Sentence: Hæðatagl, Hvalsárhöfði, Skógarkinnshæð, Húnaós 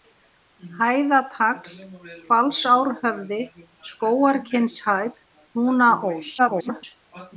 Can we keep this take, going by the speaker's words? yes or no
no